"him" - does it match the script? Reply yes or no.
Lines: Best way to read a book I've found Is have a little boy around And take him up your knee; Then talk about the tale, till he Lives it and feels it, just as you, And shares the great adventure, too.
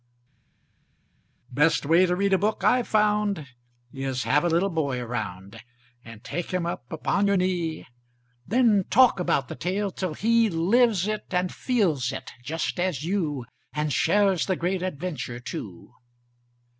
yes